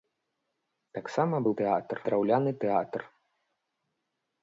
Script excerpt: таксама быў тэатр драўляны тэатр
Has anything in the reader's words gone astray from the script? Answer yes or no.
no